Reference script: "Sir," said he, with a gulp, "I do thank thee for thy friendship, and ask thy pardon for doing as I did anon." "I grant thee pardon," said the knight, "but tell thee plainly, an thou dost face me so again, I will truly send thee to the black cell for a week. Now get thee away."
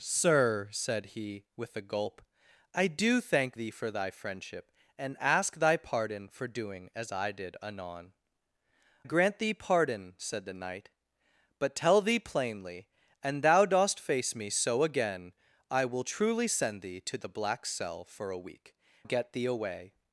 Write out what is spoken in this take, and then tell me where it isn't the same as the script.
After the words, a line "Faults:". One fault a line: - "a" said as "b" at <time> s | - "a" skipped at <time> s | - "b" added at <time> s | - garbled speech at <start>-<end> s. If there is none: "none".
"Sir," said he, with a gulp, "I do thank thee for thy friendship, and ask thy pardon for doing as I did anon." "grant thee pardon," said the knight, "but tell thee plainly, an thou dost face me so again, I will truly send thee to the black cell for a week. Get thee away."
Faults:
- "I" skipped at 8.1 s
- "Now" skipped at 18.8 s